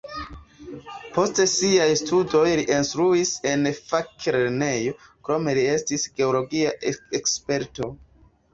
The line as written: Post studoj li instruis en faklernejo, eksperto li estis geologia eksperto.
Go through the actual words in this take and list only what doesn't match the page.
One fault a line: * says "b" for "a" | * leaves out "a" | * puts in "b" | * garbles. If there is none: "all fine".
* puts in "siaj"
* says "krome" for "eksperto"